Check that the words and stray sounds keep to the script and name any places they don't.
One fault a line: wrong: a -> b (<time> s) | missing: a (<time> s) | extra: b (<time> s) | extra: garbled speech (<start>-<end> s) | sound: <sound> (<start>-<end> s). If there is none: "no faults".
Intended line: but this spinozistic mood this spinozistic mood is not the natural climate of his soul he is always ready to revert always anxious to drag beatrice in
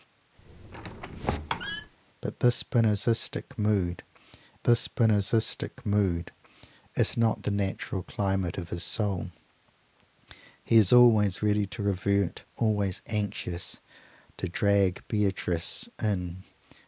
sound: squeak (0.4-1.9 s)